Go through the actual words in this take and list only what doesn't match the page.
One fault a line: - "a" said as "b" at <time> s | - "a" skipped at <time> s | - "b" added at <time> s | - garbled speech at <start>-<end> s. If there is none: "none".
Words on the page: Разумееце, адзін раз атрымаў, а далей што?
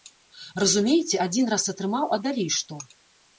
none